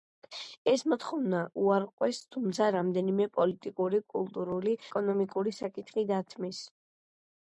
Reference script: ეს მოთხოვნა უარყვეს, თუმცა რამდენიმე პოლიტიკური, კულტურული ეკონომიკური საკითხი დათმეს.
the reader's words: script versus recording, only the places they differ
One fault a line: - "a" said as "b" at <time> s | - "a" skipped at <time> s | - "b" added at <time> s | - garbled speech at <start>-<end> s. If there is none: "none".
none